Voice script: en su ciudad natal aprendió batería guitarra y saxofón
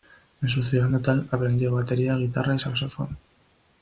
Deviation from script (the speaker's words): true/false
false